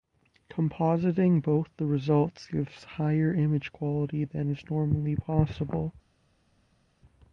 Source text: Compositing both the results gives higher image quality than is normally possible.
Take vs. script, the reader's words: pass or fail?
pass